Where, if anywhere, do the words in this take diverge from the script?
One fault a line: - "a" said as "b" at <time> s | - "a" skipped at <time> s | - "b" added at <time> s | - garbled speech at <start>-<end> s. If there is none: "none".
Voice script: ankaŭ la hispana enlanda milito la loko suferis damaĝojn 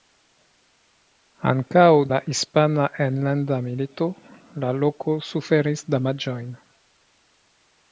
none